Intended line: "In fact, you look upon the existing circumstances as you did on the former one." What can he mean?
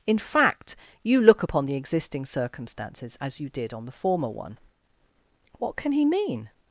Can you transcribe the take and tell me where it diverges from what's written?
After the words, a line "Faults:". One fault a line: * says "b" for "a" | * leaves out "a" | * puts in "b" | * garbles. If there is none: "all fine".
"In fact, you look upon the existing circumstances as you did on the former one." What can he mean?
Faults:
all fine